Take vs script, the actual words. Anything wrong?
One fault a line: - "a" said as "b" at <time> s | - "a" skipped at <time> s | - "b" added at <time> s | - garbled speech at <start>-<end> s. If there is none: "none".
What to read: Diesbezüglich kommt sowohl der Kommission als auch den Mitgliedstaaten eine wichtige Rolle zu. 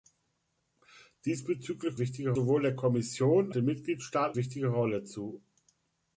- "kommt" said as "wichtige" at 2.0 s
- "als auch" skipped at 3.5 s
- "eine" skipped at 4.4 s